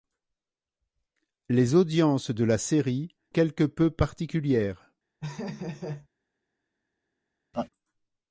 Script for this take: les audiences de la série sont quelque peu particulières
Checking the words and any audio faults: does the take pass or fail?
fail